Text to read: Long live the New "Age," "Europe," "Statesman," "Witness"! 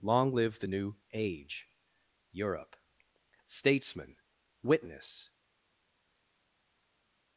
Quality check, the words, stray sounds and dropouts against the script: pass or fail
pass